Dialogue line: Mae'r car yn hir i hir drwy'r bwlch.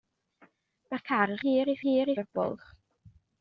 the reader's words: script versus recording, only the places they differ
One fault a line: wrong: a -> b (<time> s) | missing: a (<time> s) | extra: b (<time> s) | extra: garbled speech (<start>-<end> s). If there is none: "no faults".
no faults